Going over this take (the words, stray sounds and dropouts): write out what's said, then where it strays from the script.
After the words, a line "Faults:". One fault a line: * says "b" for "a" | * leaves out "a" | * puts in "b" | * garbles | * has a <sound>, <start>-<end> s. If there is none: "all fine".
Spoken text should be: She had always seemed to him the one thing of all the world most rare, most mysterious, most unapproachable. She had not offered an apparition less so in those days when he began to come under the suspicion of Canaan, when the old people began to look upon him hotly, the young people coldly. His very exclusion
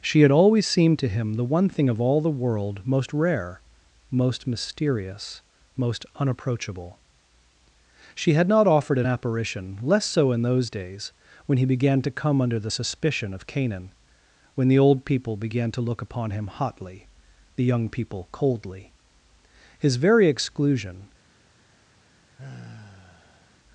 She had always seemed to him the one thing of all the world most rare, most mysterious, most unapproachable. She had not offered an apparition less so in those days when he began to come under the suspicion of Canaan, when the old people began to look upon him hotly, the young people coldly. His very exclusion
Faults:
* has a sigh, 22.4-23.6 s